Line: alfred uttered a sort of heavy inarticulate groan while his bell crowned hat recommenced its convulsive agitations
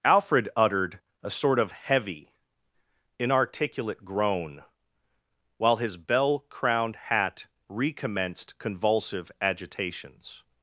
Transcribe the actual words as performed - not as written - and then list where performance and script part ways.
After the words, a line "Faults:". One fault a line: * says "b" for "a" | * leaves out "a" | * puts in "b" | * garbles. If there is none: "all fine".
alfred uttered a sort of heavy inarticulate groan while his bell crowned hat recommenced convulsive agitations
Faults:
* leaves out "its"